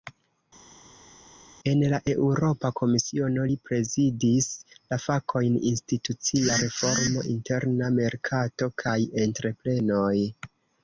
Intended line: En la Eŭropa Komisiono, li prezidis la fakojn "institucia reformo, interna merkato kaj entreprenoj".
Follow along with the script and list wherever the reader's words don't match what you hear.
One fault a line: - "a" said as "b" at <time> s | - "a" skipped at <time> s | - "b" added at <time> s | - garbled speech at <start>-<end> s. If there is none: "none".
none